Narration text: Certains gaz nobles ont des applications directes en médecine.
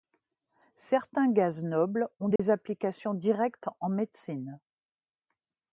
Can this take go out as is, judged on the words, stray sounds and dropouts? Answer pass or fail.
fail